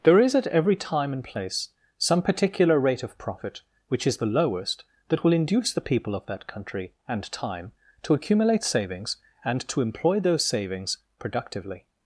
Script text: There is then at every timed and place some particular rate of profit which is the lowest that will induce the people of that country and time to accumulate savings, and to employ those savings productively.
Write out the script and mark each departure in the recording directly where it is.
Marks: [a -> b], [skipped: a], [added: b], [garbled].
There is [skipped: then] at every [timed -> time] and place some particular rate of profit which is the lowest that will induce the people of that country and time to accumulate savings, and to employ those savings productively.